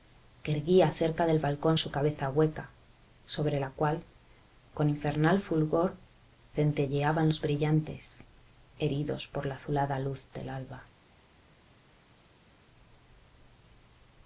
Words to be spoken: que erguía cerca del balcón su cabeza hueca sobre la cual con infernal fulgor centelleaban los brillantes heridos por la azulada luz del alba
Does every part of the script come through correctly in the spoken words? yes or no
yes